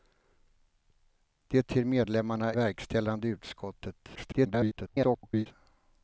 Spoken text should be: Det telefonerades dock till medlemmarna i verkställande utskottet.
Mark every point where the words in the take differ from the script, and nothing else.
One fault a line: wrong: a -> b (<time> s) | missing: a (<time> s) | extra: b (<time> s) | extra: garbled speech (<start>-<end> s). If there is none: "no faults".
missing: telefonerades dock (1.6 s)
missing: i (2.5 s)
extra: garbled speech (4.2-5.5 s)